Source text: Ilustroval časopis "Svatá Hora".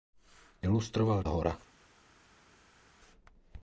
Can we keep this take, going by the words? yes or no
no